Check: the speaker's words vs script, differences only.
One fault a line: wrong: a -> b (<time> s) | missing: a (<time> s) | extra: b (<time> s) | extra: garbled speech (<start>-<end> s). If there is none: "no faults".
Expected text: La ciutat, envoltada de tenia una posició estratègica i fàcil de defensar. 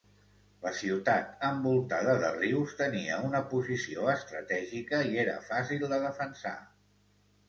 extra: rius (2.4 s)
extra: era (5.2 s)